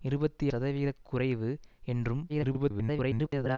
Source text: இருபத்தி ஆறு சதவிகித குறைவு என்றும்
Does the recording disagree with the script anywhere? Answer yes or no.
yes